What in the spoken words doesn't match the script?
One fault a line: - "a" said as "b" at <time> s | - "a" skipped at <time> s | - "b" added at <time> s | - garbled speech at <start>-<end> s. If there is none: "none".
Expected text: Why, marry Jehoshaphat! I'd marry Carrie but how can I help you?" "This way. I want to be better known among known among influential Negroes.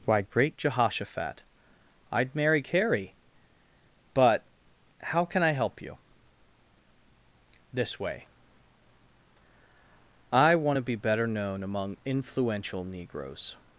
- "marry" said as "great" at 0.2 s
- "known among" skipped at 12.0 s